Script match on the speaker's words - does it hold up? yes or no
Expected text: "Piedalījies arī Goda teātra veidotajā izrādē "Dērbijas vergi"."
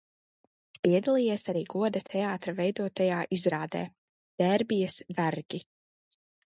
yes